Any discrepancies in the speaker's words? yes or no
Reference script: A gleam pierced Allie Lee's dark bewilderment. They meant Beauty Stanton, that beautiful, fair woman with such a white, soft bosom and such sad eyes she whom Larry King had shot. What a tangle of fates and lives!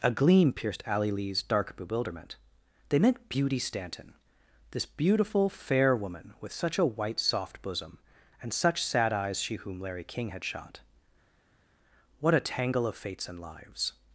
yes